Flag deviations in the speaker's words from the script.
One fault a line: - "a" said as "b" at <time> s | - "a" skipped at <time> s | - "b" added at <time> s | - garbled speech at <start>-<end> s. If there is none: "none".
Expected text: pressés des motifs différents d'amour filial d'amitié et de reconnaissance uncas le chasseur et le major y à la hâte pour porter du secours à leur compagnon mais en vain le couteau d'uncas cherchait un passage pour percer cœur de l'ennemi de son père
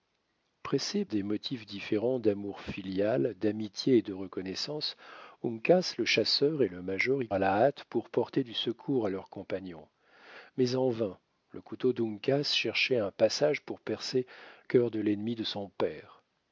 none